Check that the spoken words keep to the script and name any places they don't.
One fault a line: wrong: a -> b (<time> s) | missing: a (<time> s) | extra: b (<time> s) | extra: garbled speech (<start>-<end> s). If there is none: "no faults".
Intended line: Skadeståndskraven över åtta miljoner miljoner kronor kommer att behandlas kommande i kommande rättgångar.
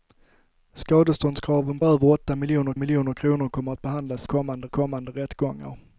no faults